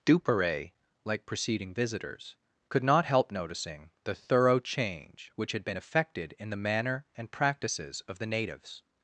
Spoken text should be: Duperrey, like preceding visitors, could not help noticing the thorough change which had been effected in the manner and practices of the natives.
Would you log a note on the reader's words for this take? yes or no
no